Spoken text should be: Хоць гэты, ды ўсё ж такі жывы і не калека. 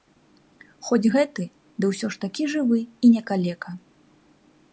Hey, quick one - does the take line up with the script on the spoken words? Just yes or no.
yes